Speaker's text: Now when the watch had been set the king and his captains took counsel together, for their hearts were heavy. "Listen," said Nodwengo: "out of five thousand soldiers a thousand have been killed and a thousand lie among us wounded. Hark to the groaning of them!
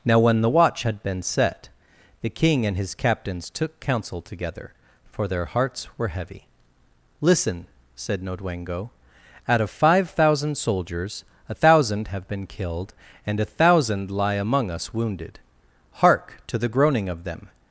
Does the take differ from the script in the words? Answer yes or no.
no